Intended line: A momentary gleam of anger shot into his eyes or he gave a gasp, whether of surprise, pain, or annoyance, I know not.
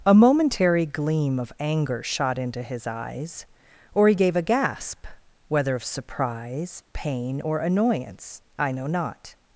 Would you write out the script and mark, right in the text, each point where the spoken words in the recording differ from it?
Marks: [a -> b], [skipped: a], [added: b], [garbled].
A momentary gleam of anger shot into his eyes or he gave a gasp, whether of surprise, pain, or annoyance, I know not.